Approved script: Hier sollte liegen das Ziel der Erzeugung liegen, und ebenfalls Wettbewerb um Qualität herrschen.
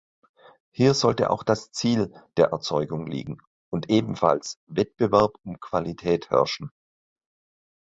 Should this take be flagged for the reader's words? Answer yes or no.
yes